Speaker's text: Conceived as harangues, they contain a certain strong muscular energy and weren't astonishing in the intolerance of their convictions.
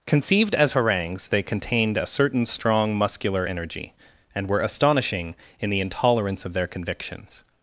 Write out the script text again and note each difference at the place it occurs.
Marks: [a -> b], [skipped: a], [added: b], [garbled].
Conceived as harangues, they [contain -> contained] a certain strong muscular energy and [weren't -> were] astonishing in the intolerance of their convictions.